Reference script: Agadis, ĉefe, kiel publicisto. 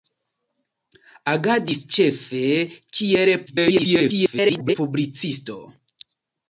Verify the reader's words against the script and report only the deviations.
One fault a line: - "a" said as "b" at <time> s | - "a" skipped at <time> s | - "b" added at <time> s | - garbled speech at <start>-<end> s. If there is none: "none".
- garbled speech at 3.5-4.8 s